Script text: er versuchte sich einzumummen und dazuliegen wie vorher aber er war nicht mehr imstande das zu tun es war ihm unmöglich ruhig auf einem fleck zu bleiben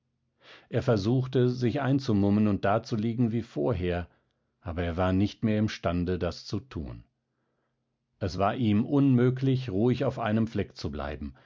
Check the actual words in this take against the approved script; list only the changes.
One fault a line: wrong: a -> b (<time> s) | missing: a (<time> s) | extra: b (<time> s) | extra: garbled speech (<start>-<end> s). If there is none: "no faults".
no faults